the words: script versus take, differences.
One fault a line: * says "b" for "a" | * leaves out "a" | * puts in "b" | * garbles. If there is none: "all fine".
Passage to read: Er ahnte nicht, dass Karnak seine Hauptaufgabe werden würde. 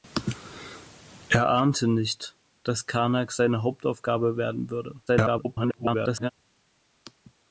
* garbles